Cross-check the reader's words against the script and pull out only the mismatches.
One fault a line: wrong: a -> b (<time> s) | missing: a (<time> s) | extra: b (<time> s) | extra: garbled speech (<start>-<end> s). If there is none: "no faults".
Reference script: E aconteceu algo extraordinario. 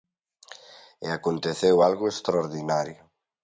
no faults